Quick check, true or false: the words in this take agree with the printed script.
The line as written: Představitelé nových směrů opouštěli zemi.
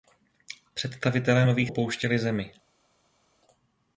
false